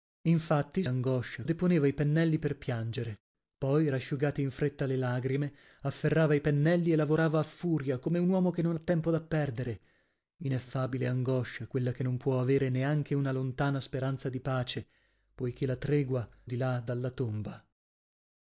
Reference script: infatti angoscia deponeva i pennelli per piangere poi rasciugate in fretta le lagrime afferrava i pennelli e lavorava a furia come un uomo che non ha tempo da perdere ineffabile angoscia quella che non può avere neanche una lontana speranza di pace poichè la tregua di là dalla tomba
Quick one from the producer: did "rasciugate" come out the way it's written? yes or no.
yes